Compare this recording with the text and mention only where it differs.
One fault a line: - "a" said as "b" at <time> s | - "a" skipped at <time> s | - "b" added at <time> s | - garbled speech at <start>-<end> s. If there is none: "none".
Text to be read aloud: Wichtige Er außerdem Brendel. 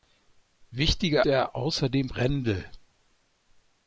none